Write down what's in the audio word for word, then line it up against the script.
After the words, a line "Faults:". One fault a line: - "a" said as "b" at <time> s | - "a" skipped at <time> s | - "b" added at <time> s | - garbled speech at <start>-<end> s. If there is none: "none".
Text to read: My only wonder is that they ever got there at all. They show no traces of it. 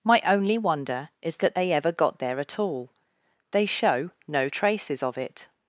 My only wonder is that they ever got there at all. They show no traces of it.
Faults:
none